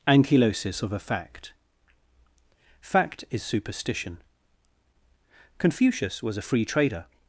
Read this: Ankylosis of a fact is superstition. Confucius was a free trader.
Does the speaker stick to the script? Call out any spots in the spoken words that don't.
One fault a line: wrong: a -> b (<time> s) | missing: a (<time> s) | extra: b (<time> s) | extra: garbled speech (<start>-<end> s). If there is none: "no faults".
extra: fact (2.8 s)